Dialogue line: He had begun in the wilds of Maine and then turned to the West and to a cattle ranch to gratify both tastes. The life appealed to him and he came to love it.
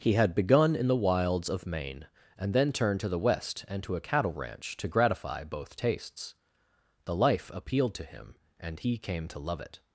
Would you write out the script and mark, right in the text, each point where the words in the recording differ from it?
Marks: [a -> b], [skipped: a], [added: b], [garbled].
He had begun in the wilds of Maine and then turned to the West and to a cattle ranch to gratify both tastes. The life appealed to him and he came to love it.